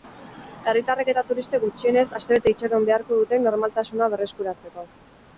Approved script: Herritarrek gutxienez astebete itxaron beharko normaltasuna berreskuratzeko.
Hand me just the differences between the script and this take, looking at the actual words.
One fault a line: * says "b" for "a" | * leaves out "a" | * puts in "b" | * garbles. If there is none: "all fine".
* puts in "eta turistek"
* puts in "dute"